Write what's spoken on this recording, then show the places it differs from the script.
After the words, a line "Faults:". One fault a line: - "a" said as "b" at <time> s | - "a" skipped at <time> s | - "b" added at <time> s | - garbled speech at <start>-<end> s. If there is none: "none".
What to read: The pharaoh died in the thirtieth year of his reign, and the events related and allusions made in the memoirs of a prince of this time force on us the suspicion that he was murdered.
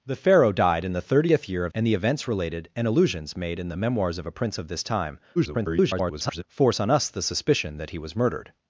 The pharaoh died in the thirtieth year of and the events related and allusions made in the memoirs of a prince of this time [garbled] force on us the suspicion that he was murdered.
Faults:
- "his reign" skipped at 1.7 s
- garbled speech at 5.4-6.4 s